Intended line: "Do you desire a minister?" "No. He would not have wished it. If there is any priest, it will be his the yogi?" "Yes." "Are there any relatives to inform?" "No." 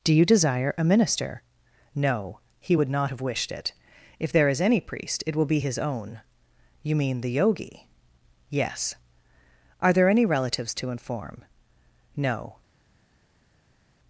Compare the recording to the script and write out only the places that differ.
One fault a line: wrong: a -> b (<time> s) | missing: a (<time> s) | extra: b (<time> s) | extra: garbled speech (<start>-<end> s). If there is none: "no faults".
extra: own You mean (5.8 s)